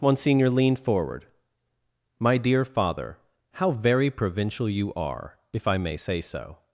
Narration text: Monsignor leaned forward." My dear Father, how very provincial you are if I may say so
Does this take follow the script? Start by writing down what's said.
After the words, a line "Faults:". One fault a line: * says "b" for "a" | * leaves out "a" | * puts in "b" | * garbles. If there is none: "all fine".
Monsignor leaned forward." My dear Father, how very provincial you are if I may say so
Faults:
all fine